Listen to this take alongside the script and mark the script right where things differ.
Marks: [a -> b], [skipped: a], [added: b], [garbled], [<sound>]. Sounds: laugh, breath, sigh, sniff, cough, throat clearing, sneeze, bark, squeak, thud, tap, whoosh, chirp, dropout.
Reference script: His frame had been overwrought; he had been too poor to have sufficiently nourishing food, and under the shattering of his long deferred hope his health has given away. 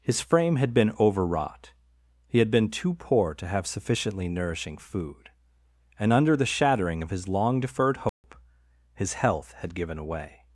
His frame had been overwrought; he had been too poor to have sufficiently nourishing food, and under the shattering of his long deferred hope [dropout] his health [has -> had] given away.